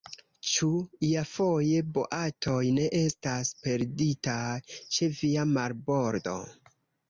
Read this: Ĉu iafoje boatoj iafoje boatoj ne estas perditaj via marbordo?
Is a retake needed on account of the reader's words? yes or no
yes